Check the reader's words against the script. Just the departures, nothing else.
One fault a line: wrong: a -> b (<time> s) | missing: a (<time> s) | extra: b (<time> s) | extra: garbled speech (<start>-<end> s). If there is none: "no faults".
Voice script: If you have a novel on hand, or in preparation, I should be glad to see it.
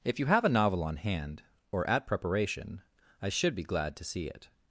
wrong: in -> at (1.9 s)